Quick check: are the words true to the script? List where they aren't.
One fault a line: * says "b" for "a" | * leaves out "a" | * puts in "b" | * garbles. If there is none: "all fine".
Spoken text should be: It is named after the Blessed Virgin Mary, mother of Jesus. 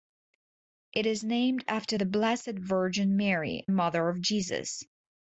all fine